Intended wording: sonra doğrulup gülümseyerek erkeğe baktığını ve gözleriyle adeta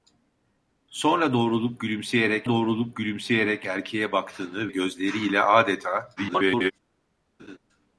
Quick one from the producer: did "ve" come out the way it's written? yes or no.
no